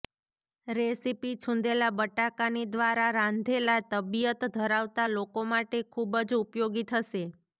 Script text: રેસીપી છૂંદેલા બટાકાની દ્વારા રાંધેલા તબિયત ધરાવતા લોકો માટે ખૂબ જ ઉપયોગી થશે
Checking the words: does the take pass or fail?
pass